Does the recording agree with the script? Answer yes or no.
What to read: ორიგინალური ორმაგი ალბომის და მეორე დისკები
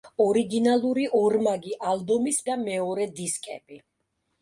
yes